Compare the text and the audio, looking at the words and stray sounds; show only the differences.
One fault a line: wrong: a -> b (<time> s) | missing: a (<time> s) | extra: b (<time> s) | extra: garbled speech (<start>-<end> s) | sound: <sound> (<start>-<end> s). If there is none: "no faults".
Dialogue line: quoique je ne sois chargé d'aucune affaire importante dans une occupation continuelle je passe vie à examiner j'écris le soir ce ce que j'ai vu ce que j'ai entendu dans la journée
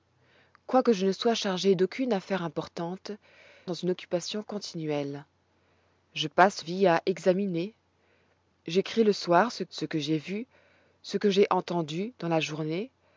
no faults